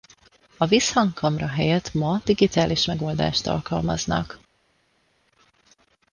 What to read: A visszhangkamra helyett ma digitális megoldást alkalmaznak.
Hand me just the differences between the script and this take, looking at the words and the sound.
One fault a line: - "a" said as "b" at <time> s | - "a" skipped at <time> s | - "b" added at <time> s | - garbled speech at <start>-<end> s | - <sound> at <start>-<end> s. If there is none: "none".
none